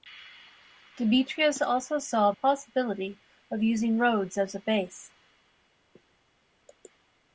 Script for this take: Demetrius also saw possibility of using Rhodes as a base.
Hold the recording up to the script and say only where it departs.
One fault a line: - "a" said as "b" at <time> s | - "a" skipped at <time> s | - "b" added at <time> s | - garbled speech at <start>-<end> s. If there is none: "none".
none